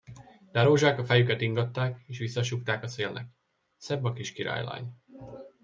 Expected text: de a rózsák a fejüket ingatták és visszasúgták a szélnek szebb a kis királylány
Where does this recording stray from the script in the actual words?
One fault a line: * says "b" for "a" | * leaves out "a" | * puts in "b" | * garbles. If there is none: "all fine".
all fine